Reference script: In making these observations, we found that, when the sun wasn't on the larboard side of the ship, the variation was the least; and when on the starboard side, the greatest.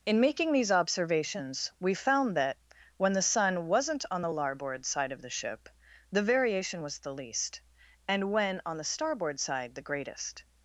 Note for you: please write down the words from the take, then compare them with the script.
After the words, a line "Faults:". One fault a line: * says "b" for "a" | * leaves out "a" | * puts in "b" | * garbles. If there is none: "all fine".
In making these observations, we found that, when the sun wasn't on the larboard side of the ship, the variation was the least; and when on the starboard side, the greatest.
Faults:
all fine